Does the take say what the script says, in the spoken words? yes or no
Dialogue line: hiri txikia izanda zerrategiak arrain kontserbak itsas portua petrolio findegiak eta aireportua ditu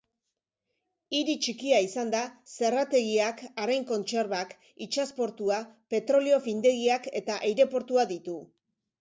yes